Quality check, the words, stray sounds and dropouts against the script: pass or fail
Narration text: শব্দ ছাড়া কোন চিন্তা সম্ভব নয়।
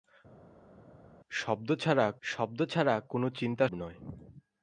fail